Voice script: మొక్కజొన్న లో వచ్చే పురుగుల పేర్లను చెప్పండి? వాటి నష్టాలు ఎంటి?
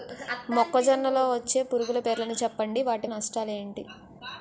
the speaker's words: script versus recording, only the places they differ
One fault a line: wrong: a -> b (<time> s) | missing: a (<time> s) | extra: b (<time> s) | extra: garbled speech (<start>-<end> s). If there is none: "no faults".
no faults